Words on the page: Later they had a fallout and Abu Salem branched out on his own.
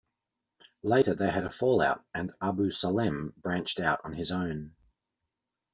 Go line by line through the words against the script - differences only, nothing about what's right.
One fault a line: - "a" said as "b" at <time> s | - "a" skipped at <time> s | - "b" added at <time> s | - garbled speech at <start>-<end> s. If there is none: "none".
none